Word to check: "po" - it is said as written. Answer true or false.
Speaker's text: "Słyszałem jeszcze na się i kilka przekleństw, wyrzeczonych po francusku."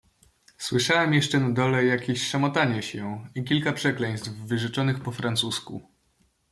true